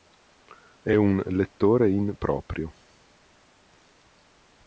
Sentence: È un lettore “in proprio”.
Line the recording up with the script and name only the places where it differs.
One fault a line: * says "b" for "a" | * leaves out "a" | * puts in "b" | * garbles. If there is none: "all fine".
all fine